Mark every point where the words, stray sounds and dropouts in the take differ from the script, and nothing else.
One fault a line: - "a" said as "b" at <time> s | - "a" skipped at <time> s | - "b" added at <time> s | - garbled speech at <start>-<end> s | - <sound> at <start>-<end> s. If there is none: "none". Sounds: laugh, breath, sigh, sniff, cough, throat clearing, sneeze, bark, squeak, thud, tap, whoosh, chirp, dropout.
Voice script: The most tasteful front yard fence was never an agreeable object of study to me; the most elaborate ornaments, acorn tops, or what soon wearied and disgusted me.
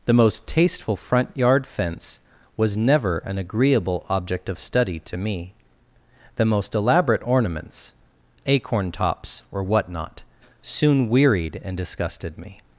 - "not" added at 9.9 s